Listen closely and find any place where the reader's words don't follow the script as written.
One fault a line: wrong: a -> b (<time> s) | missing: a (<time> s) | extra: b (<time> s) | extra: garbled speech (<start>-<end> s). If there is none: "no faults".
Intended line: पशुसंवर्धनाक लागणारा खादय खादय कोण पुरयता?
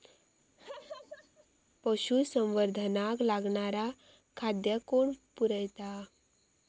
missing: खादय (4.8 s)